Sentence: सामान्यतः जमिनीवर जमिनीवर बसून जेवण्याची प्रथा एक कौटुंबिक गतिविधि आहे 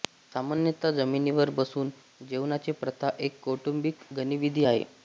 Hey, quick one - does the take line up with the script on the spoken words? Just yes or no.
no